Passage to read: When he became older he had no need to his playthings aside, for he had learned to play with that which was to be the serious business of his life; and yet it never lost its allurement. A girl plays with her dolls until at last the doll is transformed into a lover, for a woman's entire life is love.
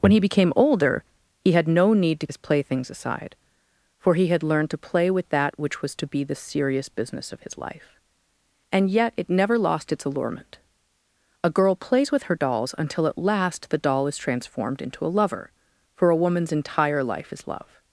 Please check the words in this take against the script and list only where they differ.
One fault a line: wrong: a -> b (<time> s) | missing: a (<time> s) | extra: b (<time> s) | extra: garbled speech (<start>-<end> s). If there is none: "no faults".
no faults